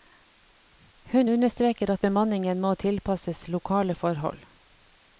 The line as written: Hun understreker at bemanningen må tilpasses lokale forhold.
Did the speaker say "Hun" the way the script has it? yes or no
yes